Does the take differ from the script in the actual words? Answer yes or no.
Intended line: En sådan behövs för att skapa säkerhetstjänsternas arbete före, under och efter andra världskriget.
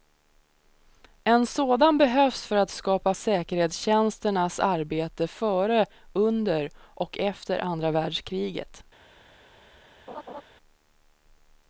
no